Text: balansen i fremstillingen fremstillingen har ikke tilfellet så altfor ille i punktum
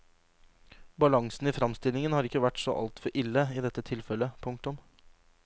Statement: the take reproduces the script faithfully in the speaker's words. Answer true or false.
false